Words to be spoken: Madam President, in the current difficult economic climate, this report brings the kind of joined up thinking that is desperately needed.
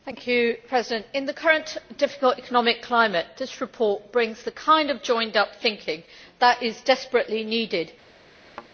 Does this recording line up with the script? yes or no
yes